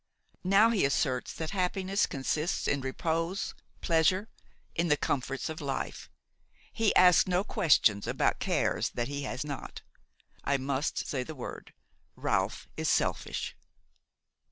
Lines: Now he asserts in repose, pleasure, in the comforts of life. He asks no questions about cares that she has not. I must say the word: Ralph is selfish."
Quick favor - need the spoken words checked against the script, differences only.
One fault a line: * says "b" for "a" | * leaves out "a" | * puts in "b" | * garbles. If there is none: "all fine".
* puts in "that happiness consists"
* says "he" for "she"